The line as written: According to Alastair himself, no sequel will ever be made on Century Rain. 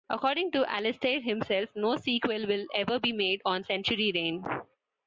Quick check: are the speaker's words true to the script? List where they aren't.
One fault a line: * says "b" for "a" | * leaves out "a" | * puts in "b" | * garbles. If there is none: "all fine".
all fine